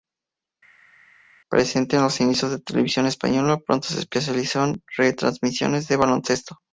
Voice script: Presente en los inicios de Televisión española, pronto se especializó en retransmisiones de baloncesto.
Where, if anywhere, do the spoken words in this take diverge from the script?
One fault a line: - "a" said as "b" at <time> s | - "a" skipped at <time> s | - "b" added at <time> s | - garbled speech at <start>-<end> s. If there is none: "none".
none